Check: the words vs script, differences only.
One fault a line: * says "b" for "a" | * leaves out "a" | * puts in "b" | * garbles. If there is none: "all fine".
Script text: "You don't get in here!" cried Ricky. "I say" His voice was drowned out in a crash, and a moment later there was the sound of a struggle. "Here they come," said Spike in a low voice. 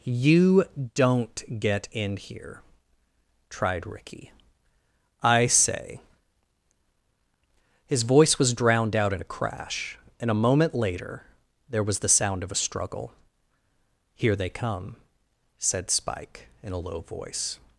* says "tried" for "cried"